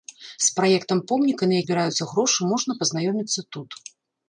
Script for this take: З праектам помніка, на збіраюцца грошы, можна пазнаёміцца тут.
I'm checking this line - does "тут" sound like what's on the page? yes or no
yes